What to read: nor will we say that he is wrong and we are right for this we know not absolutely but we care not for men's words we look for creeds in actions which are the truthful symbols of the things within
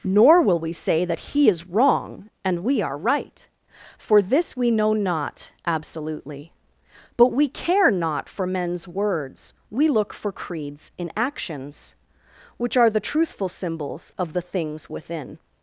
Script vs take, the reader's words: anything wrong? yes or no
no